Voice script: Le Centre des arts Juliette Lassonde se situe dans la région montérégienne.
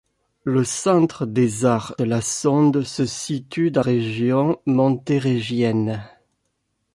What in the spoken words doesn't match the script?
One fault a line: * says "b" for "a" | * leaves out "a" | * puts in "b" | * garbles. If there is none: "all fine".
* leaves out "Juliette"
* leaves out "la"